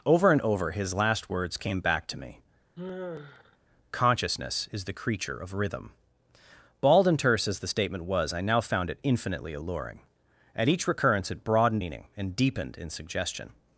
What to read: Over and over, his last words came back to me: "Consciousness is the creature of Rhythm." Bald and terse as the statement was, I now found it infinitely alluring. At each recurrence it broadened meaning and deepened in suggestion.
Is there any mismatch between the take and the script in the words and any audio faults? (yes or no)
yes